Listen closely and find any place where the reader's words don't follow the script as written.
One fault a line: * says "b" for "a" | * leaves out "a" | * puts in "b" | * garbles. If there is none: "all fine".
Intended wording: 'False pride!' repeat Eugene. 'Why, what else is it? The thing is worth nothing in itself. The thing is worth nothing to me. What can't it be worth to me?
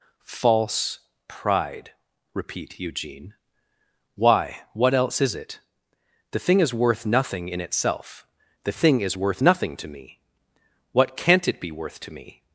all fine